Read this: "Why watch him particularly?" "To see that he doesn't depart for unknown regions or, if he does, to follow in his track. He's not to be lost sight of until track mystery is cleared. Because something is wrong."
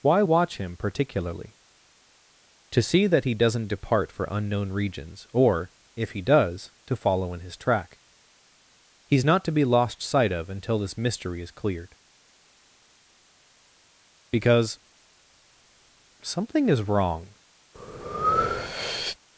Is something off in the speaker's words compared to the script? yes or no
yes